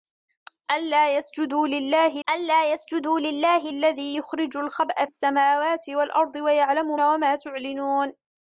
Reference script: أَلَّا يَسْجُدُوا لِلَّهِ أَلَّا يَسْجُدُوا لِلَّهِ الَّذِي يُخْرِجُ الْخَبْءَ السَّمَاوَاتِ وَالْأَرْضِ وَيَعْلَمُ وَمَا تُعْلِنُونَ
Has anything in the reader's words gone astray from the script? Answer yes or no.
no